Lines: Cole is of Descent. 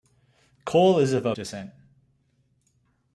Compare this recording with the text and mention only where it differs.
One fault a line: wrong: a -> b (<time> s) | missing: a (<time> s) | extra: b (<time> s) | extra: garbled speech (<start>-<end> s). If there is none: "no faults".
no faults